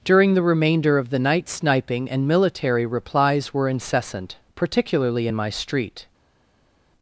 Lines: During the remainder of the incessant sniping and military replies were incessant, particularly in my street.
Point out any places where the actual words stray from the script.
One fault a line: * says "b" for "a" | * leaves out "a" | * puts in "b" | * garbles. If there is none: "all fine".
* says "night" for "incessant"